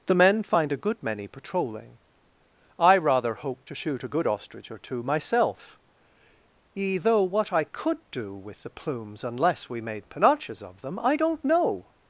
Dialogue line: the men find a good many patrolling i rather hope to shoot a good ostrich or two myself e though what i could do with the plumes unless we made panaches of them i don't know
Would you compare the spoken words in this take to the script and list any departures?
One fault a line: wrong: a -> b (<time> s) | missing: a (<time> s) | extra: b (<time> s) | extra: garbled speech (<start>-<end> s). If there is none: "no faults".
no faults